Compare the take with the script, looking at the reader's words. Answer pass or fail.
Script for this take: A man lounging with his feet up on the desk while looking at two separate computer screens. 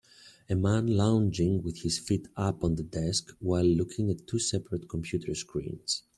pass